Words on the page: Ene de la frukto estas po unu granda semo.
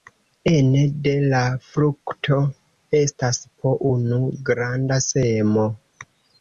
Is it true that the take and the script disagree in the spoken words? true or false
false